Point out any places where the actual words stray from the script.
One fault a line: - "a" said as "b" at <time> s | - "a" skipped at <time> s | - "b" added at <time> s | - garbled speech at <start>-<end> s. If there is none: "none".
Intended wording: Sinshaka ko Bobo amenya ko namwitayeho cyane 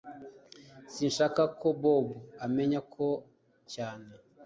- "namwitayeho" skipped at 3.1 s